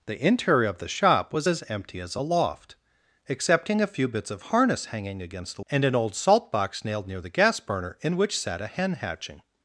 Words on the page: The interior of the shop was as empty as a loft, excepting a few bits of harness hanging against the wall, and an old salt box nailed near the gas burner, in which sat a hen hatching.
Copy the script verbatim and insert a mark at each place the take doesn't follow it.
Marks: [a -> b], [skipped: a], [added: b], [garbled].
The interior of the shop was as empty as a loft, excepting a few bits of harness hanging against the [skipped: wall,] and an old salt box nailed near the gas burner, in which sat a hen hatching.